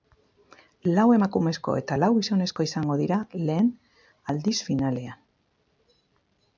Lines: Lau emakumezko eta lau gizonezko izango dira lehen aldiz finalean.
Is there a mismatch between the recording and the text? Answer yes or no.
no